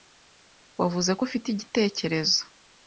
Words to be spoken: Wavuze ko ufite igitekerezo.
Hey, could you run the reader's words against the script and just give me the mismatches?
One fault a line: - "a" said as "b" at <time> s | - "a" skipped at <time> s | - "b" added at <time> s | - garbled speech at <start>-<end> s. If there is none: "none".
none